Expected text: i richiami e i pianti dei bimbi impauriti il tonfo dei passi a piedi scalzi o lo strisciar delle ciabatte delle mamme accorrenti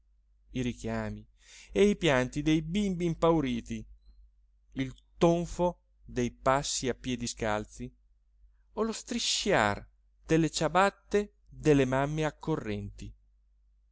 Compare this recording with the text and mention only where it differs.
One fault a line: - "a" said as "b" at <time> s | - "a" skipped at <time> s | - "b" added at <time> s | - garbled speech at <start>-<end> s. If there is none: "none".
none